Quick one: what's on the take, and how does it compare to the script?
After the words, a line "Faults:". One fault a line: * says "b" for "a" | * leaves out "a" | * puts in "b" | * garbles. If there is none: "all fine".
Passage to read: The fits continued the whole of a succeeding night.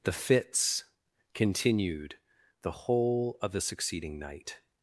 The fits continued the whole of the succeeding night.
Faults:
* says "the" for "a"